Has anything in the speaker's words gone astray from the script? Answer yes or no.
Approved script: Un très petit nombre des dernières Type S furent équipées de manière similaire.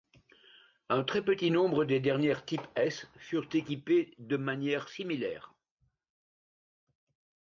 no